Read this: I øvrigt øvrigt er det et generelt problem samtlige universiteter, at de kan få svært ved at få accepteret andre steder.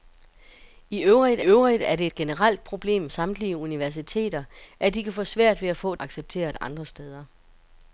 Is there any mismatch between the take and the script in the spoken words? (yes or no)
no